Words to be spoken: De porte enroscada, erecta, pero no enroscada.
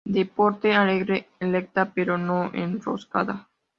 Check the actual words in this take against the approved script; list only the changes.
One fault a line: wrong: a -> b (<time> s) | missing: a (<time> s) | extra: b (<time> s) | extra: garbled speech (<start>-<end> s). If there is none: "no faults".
wrong: enroscada -> alegre (0.8 s)